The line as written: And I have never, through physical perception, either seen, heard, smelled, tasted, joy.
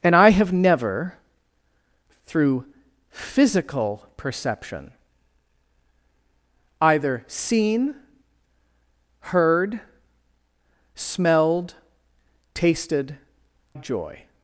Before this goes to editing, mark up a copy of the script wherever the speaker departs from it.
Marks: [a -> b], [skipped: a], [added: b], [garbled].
And I have never, through physical perception, either seen, heard, smelled, tasted, joy.